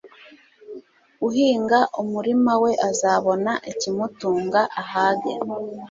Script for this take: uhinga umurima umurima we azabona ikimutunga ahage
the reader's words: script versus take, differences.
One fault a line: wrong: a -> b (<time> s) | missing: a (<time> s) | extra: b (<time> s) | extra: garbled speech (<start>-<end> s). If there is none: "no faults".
missing: umurima (2.5 s)